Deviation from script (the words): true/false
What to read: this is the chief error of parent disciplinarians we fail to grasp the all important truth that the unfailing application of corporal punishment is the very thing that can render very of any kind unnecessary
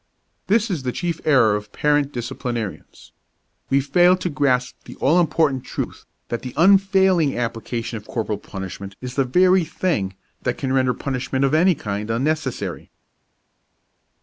true